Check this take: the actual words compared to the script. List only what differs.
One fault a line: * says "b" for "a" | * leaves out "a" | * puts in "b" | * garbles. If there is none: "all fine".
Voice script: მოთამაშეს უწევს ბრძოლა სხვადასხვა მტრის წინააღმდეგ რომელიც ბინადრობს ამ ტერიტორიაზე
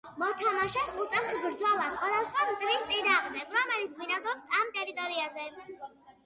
all fine